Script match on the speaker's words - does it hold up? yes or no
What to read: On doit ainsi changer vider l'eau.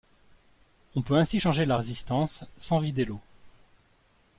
no